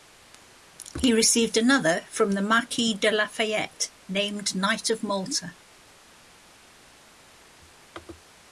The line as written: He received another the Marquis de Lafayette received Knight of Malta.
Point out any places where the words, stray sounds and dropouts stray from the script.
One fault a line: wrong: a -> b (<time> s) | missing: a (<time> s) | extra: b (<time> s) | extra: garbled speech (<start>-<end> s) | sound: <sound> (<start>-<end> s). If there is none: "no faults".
extra: from (2.1 s)
wrong: received -> named (4.1 s)